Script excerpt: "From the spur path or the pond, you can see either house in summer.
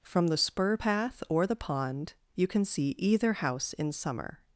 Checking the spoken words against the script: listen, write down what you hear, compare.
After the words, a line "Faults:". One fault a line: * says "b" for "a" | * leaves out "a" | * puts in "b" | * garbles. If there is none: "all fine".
"From the spur path or the pond, you can see either house in summer.
Faults:
all fine